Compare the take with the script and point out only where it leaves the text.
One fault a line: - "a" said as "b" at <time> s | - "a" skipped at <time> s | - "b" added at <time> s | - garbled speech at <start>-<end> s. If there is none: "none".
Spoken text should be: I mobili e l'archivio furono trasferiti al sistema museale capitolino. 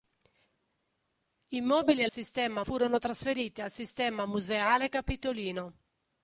- "l'archivio" said as "sistema" at 2.1 s